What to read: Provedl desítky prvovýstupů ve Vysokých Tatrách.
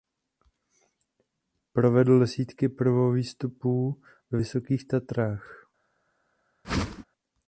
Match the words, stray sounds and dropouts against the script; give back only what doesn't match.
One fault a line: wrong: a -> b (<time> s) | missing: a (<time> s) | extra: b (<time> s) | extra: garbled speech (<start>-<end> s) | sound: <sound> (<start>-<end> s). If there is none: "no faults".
sound: whoosh (6.6-7.0 s)